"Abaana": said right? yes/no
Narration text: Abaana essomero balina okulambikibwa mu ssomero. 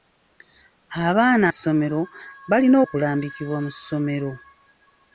yes